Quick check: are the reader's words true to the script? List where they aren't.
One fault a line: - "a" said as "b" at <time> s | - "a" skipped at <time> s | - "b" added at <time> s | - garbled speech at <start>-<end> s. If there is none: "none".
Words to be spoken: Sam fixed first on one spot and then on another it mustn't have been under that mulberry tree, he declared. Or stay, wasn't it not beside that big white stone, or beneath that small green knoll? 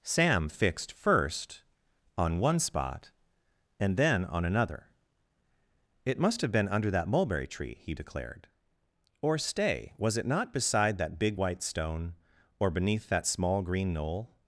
- "mustn't" said as "must" at 6.2 s
- "wasn't" said as "was" at 10.0 s